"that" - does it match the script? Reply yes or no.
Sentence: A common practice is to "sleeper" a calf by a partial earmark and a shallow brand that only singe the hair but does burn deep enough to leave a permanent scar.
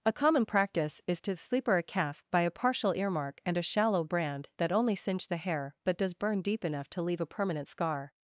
yes